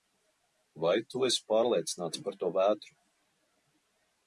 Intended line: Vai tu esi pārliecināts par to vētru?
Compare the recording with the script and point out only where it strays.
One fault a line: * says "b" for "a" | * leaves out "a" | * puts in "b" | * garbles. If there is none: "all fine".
all fine